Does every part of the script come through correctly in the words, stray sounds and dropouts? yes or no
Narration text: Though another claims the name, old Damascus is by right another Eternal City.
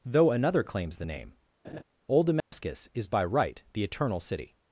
no